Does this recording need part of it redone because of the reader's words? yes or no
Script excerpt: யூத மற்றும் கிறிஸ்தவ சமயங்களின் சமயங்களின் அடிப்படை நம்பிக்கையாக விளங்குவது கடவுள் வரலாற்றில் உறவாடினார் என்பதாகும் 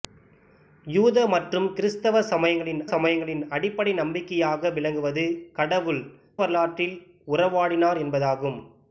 no